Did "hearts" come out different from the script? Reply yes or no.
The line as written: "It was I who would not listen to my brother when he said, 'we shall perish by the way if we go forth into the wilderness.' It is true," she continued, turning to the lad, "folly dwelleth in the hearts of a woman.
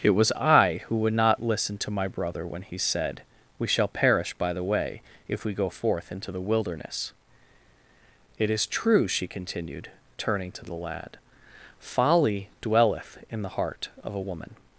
yes